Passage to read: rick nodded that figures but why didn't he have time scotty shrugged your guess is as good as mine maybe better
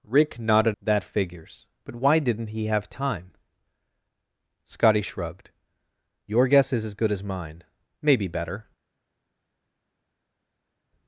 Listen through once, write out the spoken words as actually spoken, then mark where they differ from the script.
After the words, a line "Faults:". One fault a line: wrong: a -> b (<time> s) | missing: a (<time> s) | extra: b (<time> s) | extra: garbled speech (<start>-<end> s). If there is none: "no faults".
rick nodded that figures but why didn't he have time scotty shrugged your guess is as good as mine maybe better
Faults:
no faults